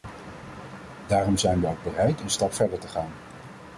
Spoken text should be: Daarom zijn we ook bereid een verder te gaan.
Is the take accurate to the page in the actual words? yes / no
no